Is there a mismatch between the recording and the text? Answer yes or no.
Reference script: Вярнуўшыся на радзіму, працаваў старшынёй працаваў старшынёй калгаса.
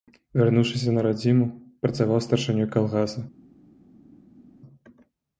yes